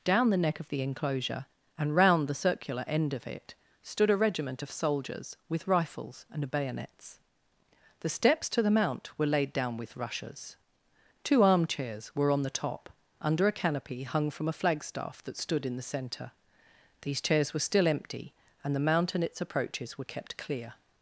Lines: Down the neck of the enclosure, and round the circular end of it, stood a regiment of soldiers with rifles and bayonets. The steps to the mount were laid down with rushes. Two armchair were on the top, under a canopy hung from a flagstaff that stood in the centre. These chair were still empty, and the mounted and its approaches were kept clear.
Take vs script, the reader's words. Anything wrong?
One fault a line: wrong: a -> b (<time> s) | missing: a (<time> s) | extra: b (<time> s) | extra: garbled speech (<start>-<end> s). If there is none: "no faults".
wrong: armchair -> armchairs (11.4 s)
wrong: chair -> chairs (17.2 s)
wrong: mounted -> mount (18.8 s)